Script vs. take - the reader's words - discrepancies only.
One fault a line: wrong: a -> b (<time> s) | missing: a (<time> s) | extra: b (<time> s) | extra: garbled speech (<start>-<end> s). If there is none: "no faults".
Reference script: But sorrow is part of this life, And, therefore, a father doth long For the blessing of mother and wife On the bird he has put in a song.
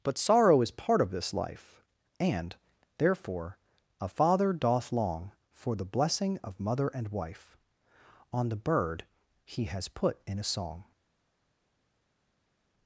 no faults